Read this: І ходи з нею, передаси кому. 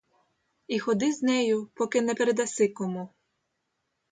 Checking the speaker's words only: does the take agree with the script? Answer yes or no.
no